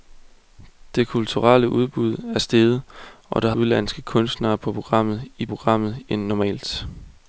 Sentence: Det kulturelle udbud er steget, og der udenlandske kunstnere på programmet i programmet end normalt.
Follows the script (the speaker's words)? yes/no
yes